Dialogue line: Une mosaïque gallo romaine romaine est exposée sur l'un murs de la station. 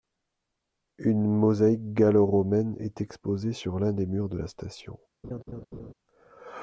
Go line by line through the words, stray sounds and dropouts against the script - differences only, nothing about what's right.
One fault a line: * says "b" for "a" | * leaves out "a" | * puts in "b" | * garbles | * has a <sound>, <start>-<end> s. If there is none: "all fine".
* leaves out "romaine"
* puts in "des"
* has a laugh, 5.2-5.9 s